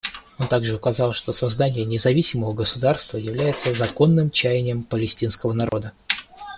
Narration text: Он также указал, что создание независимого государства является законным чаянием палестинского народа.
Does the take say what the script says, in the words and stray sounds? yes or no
no